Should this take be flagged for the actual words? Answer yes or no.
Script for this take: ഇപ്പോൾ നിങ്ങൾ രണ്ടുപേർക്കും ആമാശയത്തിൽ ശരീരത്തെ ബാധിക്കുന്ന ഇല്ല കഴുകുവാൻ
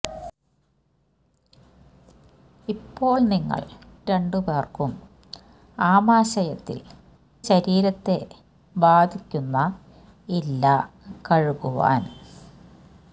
no